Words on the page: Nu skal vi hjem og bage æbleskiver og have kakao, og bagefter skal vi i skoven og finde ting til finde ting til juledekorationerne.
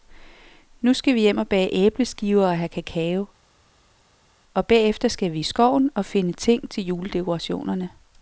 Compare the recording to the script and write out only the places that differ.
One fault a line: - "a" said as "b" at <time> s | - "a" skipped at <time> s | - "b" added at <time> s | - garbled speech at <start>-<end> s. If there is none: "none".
- "finde ting til" skipped at 6.8 s